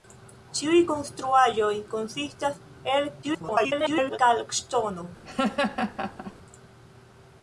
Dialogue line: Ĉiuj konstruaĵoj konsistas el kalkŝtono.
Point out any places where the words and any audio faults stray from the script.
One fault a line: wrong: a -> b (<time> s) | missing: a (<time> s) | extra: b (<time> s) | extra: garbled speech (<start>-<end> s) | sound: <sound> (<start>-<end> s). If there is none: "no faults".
extra: garbled speech (3.2-4.2 s)
sound: laugh (5.2-6.3 s)